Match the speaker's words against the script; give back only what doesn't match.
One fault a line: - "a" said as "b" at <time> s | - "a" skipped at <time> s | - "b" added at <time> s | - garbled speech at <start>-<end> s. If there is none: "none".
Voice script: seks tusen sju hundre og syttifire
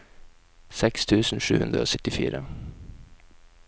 none